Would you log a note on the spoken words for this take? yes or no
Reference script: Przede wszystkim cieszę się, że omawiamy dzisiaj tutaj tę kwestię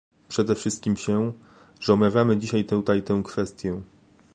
yes